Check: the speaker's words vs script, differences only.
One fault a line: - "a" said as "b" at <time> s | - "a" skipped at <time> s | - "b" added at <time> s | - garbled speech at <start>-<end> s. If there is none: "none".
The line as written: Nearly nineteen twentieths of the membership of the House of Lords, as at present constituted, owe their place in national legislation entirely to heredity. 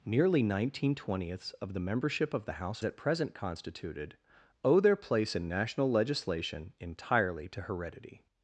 - "of Lords as" skipped at 2.8 s